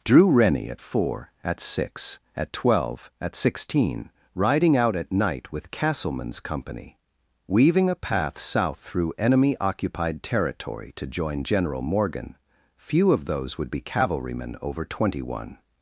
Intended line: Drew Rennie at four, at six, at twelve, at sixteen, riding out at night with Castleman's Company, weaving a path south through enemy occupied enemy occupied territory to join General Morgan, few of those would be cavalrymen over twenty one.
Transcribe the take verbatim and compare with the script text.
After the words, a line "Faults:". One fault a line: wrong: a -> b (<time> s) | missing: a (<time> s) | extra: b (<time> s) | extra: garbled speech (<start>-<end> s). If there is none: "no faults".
Drew Rennie at four, at six, at twelve, at sixteen, riding out at night with Castleman's Company, weaving a path south through enemy occupied territory to join General Morgan, few of those would be cavalrymen over twenty one.
Faults:
missing: enemy occupied (10.2 s)